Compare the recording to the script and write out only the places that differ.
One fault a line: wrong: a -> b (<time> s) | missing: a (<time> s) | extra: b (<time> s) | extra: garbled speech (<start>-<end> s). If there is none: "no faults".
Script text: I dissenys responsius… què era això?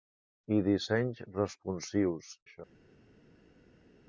missing: què era (2.3 s)